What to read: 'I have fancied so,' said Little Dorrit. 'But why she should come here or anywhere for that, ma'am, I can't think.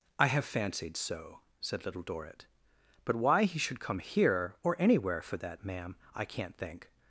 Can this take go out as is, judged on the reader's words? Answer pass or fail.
fail